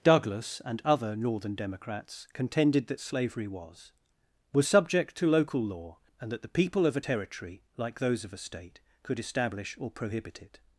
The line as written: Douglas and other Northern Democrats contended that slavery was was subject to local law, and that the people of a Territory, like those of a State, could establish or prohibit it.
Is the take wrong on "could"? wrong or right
right